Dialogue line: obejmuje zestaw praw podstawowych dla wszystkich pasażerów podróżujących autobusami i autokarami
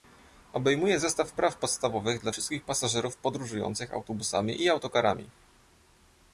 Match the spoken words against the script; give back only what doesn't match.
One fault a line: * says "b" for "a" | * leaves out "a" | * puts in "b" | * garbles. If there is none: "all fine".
all fine